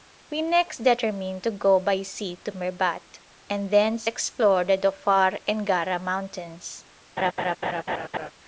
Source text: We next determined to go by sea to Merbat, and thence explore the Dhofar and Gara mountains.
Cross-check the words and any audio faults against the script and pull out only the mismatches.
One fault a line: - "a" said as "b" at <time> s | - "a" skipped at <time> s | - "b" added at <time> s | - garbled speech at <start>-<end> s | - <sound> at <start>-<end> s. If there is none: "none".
- laugh at 7.2-8.3 s